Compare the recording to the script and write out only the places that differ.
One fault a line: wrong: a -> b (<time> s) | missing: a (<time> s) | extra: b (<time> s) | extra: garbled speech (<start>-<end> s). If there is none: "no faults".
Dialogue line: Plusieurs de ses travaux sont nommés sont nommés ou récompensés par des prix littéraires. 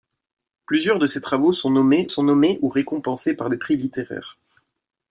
no faults